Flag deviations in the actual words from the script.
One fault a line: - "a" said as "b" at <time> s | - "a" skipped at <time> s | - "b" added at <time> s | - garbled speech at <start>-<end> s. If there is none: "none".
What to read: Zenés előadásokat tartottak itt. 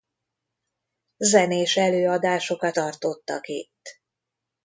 none